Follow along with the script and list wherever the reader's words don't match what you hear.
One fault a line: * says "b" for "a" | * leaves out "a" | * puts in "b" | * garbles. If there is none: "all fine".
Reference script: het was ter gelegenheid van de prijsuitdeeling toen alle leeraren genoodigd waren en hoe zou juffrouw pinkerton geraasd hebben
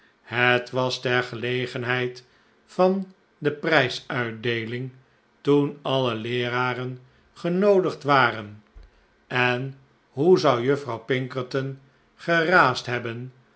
all fine